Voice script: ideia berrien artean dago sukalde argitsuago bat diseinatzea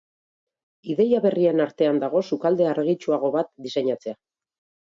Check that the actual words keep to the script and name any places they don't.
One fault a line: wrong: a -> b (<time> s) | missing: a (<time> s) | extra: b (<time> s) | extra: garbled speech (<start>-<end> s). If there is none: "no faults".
no faults